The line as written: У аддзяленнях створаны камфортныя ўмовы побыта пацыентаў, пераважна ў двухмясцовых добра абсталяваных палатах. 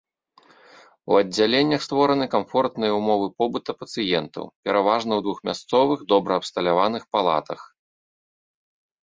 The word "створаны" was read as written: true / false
true